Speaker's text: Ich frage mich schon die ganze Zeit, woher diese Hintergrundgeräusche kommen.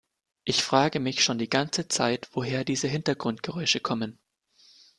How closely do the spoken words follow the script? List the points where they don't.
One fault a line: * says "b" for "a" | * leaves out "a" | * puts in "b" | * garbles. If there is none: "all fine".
all fine